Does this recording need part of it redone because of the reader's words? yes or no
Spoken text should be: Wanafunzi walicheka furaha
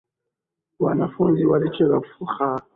no